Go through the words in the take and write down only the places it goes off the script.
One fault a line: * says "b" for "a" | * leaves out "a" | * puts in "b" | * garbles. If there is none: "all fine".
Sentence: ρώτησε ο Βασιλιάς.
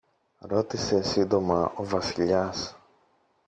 * puts in "σύντομα"